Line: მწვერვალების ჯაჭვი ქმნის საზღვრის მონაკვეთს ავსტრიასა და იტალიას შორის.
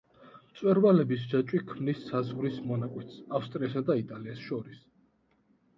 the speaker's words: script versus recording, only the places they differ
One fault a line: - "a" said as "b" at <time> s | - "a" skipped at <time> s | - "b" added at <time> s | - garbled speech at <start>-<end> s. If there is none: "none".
none